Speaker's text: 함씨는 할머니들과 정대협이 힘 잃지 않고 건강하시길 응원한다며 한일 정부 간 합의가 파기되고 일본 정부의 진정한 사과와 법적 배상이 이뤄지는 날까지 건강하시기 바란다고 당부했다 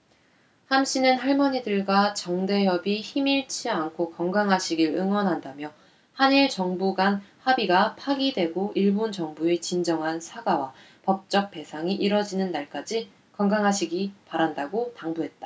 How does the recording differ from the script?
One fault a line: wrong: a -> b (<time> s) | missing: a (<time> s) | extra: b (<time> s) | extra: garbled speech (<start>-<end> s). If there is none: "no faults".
no faults